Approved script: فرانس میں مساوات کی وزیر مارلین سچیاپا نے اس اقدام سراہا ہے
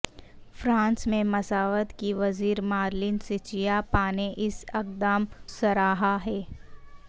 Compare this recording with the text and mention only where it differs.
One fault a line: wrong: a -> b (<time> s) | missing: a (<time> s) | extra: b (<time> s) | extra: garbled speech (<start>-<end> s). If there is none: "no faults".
no faults